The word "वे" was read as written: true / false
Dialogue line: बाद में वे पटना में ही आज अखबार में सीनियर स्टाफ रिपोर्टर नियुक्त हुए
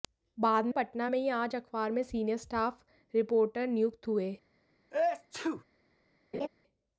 false